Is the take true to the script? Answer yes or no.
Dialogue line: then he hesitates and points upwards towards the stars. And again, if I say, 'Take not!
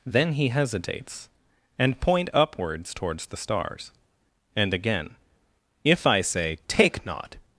no